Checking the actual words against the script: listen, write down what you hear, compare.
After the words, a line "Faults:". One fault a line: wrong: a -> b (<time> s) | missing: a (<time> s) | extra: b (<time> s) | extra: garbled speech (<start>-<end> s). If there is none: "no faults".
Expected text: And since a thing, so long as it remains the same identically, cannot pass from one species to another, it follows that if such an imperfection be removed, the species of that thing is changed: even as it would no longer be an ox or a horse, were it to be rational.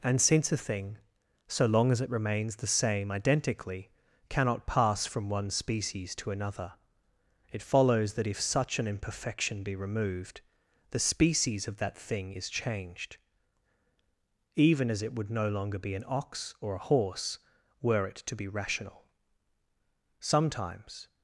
And since a thing, so long as it remains the same identically, cannot pass from one species to another, it follows that if such an imperfection be removed, the species of that thing is changed: even as it would no longer be an ox or a horse, were it to be rational. Sometimes
Faults:
extra: Sometimes (20.2 s)